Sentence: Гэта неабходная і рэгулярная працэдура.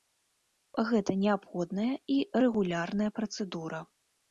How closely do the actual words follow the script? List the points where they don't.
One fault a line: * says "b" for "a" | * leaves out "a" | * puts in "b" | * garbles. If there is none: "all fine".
all fine